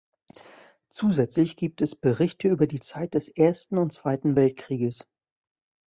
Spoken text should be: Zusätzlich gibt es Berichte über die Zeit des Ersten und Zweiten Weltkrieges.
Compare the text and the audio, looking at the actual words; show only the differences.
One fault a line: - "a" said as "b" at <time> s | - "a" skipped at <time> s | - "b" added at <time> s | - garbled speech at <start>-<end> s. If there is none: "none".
none